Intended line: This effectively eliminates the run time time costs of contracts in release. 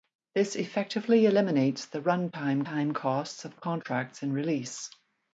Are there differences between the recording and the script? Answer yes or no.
no